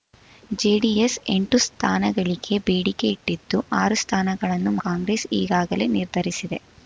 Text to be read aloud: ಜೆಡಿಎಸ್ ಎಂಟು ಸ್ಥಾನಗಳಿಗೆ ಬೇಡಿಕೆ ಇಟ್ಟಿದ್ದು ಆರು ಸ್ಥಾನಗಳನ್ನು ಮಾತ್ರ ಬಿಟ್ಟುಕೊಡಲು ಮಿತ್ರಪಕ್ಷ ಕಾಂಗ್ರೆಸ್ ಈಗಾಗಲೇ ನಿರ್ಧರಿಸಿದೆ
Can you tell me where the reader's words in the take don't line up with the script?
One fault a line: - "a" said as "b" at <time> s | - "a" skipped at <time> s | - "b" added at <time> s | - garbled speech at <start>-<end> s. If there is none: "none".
- "ಮಾತ್ರ ಬಿಟ್ಟುಕೊಡಲು ಮಿತ್ರಪಕ್ಷ" skipped at 4.7 s